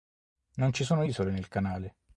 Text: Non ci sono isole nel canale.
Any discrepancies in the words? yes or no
no